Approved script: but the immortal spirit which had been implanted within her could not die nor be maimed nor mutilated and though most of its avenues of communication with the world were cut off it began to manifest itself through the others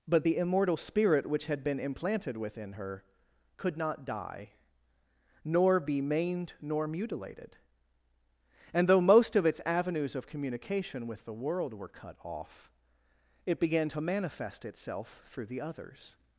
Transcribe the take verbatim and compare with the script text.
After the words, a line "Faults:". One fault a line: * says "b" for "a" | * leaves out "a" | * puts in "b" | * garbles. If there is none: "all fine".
but the immortal spirit which had been implanted within her could not die nor be maimed nor mutilated and though most of its avenues of communication with the world were cut off it began to manifest itself through the others
Faults:
all fine